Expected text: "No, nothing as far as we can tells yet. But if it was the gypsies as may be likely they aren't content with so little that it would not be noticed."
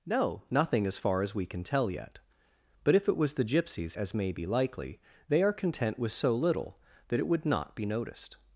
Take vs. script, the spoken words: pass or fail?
fail